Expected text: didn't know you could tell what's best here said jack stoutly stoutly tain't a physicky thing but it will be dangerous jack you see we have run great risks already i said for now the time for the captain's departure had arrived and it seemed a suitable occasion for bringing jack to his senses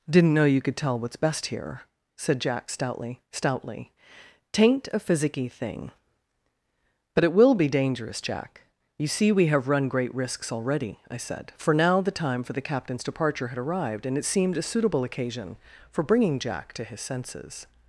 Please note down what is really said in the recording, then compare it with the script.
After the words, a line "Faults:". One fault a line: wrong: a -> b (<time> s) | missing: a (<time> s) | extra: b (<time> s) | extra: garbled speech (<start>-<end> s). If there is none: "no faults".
didn't know you could tell what's best here said jack stoutly stoutly tain't a physicky thing but it will be dangerous jack you see we have run great risks already i said for now the time for the captain's departure had arrived and it seemed a suitable occasion for bringing jack to his senses
Faults:
no faults